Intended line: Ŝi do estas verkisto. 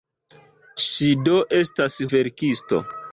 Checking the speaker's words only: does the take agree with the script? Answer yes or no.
yes